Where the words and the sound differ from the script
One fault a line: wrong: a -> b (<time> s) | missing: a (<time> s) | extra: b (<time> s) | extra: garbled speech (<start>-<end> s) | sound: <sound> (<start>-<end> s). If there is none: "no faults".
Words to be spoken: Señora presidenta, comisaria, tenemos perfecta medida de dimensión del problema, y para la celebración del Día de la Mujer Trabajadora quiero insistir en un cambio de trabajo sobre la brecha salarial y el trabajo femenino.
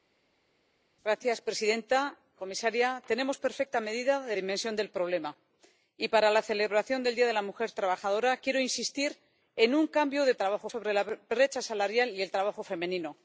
no faults